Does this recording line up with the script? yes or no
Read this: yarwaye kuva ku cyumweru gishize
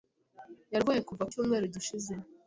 yes